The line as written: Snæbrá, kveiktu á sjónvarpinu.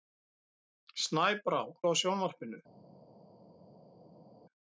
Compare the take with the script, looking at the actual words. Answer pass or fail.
fail